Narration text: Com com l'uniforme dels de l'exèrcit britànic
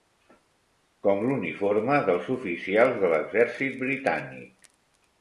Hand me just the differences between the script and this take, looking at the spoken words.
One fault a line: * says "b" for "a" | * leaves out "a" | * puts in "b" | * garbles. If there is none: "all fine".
* leaves out "com"
* puts in "oficials"